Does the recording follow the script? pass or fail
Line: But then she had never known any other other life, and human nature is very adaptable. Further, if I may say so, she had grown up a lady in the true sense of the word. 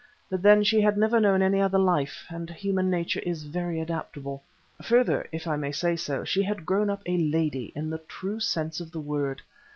fail